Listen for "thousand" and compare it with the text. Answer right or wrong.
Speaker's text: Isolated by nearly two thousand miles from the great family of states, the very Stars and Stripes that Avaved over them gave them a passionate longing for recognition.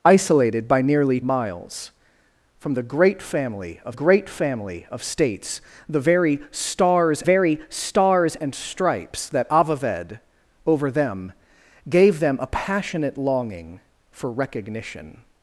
wrong